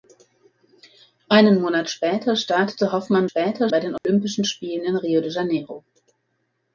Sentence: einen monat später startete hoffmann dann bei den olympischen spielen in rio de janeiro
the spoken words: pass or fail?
fail